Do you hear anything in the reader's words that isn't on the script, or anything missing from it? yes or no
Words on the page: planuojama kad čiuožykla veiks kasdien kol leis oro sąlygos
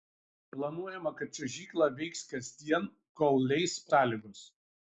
yes